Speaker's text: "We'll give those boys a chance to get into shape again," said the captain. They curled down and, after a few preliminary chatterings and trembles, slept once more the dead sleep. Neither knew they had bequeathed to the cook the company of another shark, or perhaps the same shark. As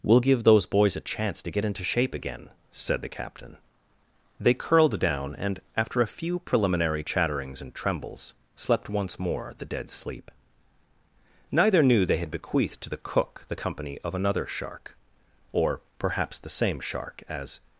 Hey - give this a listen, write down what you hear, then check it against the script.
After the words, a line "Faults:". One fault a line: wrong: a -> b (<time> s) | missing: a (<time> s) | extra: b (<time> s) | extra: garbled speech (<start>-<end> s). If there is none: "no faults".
"We'll give those boys a chance to get into shape again," said the captain. They curled down and, after a few preliminary chatterings and trembles, slept once more the dead sleep. Neither knew they had bequeathed to the cook the company of another shark, or perhaps the same shark. As
Faults:
no faults